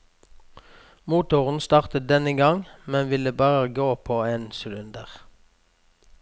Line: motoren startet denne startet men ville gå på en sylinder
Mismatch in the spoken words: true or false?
true